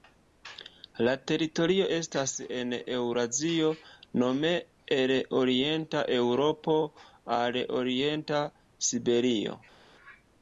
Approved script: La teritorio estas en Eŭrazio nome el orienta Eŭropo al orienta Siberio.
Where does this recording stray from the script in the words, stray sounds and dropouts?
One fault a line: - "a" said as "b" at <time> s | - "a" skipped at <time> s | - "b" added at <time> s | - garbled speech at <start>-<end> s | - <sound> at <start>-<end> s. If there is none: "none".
none